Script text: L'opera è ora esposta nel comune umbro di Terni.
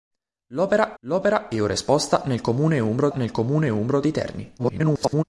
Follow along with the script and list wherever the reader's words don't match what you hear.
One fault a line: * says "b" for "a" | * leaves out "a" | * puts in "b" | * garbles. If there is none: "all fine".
* puts in "l'opera"
* puts in "nel comune umbro"
* garbles